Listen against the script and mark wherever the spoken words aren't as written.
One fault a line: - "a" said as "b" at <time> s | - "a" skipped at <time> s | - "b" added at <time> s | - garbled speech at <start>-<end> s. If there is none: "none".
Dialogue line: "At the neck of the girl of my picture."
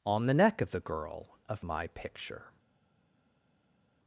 - "At" said as "On" at 0.1 s